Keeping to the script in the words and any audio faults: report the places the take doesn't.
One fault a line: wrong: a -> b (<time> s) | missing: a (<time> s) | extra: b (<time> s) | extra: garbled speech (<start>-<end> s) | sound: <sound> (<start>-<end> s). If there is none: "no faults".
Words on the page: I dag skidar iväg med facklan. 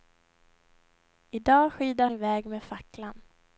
no faults